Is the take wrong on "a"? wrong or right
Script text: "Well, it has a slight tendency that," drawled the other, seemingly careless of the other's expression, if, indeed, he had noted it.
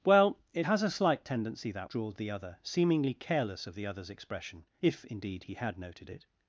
right